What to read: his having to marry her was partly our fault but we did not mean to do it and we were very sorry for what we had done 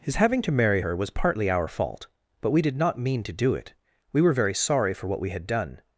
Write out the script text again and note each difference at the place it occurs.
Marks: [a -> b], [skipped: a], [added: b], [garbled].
his having to marry her was partly our fault but we did not mean to do it [skipped: and] we were very sorry for what we had done